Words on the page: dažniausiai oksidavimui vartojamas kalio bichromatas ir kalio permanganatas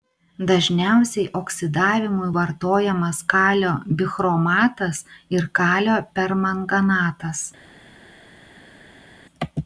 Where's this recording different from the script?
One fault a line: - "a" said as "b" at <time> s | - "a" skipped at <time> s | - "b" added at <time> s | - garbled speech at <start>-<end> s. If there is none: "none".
none